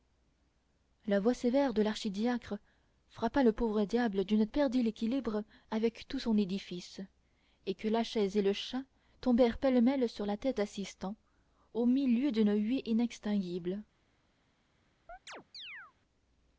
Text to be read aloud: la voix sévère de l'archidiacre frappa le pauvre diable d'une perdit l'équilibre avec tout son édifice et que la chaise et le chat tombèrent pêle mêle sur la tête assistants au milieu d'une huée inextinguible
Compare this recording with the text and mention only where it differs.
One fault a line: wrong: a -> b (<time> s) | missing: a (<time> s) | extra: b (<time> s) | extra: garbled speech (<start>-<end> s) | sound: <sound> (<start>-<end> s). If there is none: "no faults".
sound: chirp (15.1-15.9 s)